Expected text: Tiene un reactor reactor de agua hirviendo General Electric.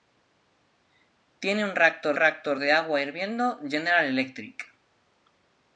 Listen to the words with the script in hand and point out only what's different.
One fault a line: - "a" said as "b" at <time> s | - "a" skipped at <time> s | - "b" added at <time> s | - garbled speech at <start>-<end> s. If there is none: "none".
none